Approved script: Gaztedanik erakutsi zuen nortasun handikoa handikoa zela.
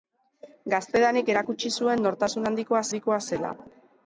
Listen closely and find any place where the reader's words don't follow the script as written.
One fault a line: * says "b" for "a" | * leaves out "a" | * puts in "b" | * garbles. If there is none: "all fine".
all fine